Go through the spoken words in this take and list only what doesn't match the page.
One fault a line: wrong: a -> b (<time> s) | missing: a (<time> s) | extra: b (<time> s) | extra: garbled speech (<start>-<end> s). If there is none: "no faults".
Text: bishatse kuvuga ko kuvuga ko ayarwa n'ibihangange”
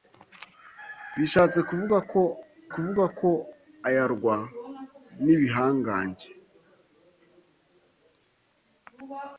no faults